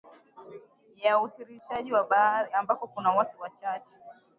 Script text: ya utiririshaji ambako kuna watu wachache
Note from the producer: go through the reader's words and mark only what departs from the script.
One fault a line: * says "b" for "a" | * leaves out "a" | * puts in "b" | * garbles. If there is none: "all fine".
all fine